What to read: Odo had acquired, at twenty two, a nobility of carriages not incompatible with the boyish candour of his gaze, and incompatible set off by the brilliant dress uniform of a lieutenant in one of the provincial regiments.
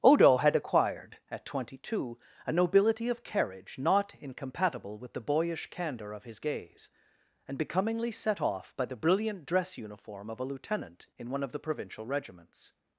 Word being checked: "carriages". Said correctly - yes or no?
no